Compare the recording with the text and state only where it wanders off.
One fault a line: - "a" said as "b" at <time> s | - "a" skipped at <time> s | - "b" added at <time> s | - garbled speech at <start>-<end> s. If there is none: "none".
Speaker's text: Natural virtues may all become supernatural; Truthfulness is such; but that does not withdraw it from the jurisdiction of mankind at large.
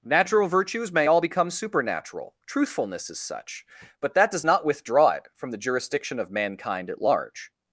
none